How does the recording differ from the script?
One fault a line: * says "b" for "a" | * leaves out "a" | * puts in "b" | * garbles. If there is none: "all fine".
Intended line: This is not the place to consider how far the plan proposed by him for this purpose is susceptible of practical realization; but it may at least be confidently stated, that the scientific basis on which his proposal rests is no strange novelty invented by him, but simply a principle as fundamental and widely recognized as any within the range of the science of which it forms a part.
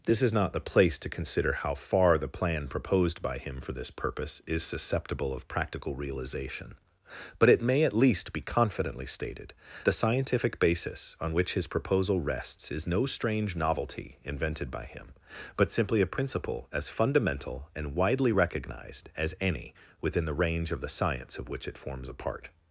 * leaves out "that"